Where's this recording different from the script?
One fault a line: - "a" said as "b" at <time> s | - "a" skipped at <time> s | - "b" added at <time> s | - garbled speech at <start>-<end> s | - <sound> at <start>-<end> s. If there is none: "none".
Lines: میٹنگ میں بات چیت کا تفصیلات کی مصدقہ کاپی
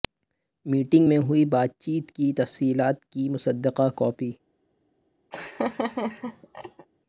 - "ہوئی" added at 1.2 s
- "کا" said as "کی" at 2.1 s
- laugh at 5.3-6.9 s